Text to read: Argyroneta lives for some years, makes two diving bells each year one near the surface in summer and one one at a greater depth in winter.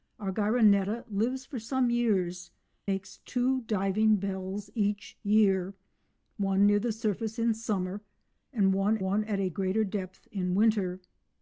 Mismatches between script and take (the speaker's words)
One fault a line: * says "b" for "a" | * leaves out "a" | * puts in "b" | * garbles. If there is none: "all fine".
all fine